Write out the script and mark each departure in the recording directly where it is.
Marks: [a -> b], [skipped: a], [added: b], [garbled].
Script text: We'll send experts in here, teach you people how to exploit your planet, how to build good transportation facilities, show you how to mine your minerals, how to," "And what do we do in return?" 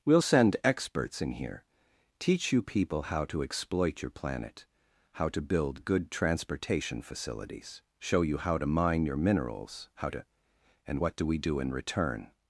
We'll send experts in here, teach you people how to exploit your planet, how to build good transportation facilities, show you how to mine your minerals, how to," "And what do we do in return?"